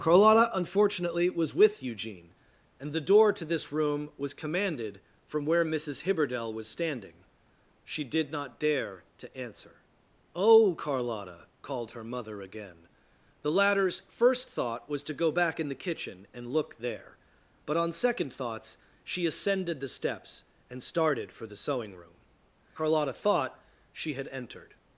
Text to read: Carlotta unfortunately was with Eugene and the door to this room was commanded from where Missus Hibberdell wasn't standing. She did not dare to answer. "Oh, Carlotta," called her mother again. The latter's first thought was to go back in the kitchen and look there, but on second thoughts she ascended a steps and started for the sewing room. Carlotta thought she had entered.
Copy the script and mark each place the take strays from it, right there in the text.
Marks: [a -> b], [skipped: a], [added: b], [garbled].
Carlotta unfortunately was with Eugene and the door to this room was commanded from where Missus Hibberdell [wasn't -> was] standing. She did not dare to answer. "Oh, Carlotta," called her mother again. The latter's first thought was to go back in the kitchen and look there, but on second thoughts she ascended [a -> the] steps and started for the sewing room. Carlotta thought she had entered.